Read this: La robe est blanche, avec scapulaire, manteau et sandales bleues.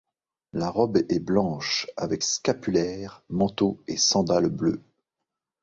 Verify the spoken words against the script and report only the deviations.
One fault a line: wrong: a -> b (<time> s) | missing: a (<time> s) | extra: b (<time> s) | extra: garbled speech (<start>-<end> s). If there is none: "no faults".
no faults